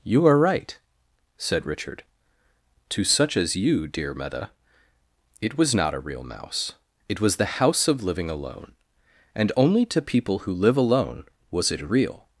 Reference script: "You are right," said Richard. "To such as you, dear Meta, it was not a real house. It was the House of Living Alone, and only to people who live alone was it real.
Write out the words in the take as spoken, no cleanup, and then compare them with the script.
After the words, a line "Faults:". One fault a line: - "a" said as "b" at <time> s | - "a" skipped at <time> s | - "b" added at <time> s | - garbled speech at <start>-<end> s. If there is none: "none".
"You are right," said Richard. "To such as you, dear Meta, it was not a real mouse. It was the House of Living Alone, and only to people who live alone was it real.
Faults:
- "house" said as "mouse" at 6.2 s